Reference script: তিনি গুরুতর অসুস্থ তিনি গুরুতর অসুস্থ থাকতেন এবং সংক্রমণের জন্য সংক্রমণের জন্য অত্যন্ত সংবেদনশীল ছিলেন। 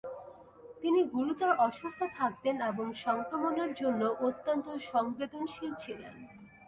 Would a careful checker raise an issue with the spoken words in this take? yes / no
yes